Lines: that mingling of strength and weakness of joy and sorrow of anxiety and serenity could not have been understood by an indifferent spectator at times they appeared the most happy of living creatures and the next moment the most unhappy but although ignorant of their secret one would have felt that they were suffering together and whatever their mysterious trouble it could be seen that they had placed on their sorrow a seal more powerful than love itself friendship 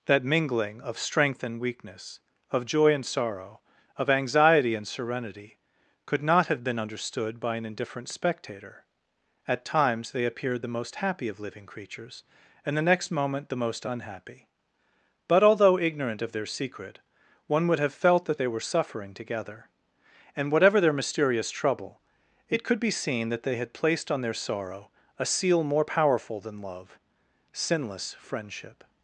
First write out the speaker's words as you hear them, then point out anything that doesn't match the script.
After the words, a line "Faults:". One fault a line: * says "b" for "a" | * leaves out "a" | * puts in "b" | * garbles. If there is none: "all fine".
that mingling of strength and weakness of joy and sorrow of anxiety and serenity could not have been understood by an indifferent spectator at times they appeared the most happy of living creatures and the next moment the most unhappy but although ignorant of their secret one would have felt that they were suffering together and whatever their mysterious trouble it could be seen that they had placed on their sorrow a seal more powerful than love sinless friendship
Faults:
* says "sinless" for "itself"